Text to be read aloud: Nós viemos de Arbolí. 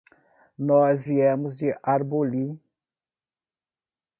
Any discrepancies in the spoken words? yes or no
no